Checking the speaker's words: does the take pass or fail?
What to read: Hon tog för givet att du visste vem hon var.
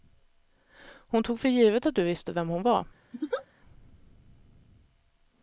pass